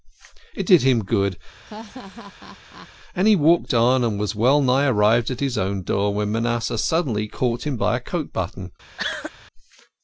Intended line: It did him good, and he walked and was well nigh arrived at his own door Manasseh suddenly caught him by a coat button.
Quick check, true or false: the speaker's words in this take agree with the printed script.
false